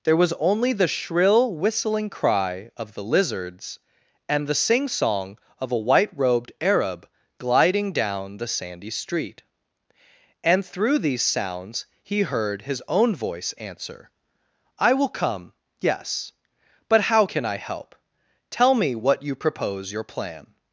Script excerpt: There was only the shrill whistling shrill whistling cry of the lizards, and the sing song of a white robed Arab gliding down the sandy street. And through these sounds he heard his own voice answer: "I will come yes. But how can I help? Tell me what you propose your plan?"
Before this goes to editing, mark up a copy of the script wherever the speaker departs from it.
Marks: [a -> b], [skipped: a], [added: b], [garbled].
There was only the shrill whistling [skipped: shrill whistling] cry of the lizards, and the sing song of a white robed Arab gliding down the sandy street. And through these sounds he heard his own voice answer: "I will come yes. But how can I help? Tell me what you propose your plan?"